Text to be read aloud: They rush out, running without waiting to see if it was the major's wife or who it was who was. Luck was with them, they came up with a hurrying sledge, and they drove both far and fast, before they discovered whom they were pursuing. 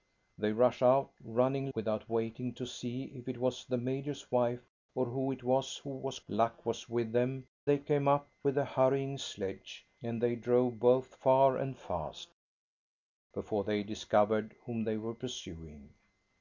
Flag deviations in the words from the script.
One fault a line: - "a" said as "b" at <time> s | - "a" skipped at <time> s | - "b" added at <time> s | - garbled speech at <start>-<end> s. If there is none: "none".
none